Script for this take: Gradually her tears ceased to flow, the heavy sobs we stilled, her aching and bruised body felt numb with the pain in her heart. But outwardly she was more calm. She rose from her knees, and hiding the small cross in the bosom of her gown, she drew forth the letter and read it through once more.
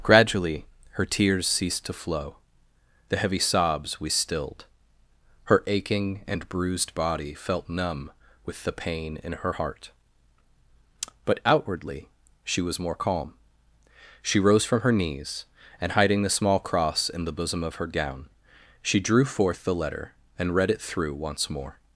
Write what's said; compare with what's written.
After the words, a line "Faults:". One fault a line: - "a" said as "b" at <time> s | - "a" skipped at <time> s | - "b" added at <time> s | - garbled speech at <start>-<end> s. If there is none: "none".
Gradually her tears ceased to flow, the heavy sobs we stilled, her aching and bruised body felt numb with the pain in her heart. But outwardly she was more calm. She rose from her knees, and hiding the small cross in the bosom of her gown, she drew forth the letter and read it through once more.
Faults:
none